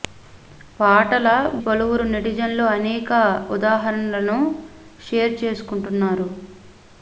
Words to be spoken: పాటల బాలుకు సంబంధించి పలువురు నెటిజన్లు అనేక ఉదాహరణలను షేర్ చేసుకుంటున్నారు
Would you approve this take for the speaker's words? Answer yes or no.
no